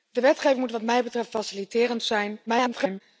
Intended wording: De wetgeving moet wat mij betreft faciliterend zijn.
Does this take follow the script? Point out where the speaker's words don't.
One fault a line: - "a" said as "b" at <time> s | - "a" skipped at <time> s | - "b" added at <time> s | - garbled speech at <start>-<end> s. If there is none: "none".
- garbled speech at 2.5-3.0 s